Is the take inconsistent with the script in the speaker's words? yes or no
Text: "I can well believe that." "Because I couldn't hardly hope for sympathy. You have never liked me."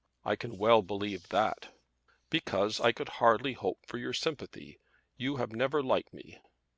yes